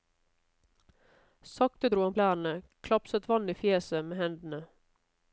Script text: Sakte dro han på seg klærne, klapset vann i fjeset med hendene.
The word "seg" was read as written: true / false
false